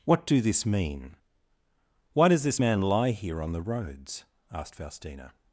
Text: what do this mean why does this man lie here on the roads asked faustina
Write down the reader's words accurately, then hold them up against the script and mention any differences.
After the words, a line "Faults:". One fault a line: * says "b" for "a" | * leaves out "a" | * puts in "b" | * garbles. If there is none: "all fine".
what do this mean why does this man lie here on the roads asked faustina
Faults:
all fine